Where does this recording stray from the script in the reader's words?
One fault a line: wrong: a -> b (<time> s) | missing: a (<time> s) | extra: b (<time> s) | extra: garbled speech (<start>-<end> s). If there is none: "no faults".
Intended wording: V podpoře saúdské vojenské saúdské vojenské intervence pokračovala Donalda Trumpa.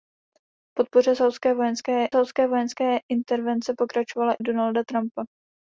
no faults